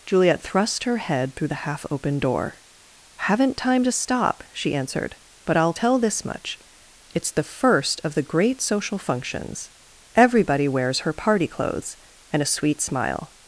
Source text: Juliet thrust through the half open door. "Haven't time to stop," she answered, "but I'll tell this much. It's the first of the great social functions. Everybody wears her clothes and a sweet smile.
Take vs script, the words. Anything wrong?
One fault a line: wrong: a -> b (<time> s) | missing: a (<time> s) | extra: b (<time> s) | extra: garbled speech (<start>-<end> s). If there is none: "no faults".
extra: her head (0.8 s)
extra: party (11.1 s)